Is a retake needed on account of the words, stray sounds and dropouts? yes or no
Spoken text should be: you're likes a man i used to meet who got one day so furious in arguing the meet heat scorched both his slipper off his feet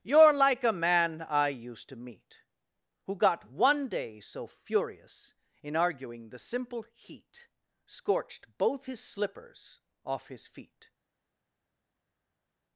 yes